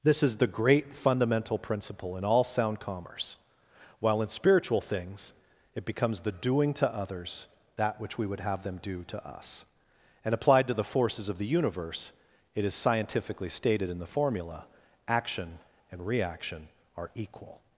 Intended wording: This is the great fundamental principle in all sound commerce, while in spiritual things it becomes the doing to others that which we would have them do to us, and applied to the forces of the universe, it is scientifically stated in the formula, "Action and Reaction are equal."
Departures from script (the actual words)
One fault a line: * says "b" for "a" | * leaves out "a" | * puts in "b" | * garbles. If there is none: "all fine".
all fine